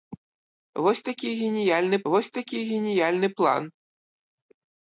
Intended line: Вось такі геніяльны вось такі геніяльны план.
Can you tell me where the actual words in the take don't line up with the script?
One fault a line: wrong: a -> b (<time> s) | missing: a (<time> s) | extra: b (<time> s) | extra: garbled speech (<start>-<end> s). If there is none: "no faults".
no faults